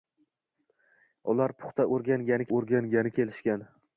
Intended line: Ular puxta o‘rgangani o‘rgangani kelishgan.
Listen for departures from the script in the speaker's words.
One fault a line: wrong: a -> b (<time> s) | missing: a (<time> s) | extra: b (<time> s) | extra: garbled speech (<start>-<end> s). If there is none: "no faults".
no faults